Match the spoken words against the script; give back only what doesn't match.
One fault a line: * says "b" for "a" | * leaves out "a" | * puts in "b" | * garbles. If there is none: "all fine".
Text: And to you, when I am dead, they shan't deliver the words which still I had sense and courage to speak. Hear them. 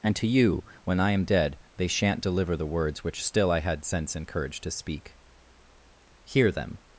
all fine